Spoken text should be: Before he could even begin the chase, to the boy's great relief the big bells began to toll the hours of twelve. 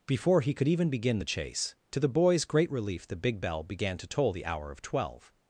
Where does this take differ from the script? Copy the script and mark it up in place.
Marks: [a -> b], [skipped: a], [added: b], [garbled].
Before he could even begin the chase, to the boy's great relief the big [bells -> bell] began to toll the [hours -> hour] of twelve.